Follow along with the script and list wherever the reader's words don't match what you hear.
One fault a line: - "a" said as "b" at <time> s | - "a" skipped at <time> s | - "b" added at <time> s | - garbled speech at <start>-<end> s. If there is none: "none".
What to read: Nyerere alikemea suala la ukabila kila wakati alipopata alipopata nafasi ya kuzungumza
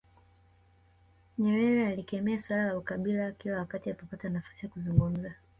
- "alipopata" skipped at 4.3 s